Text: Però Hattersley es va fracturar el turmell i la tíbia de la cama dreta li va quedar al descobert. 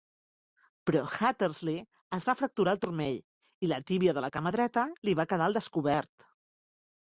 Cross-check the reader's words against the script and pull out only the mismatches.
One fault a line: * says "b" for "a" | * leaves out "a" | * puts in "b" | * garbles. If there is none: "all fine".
all fine